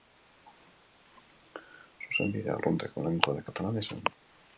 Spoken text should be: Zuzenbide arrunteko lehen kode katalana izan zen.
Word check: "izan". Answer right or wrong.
wrong